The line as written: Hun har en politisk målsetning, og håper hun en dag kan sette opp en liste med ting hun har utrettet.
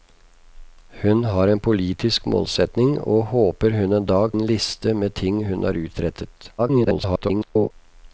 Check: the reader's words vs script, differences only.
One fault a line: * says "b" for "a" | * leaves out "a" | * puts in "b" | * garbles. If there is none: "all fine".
* leaves out "kan sette opp"
* garbles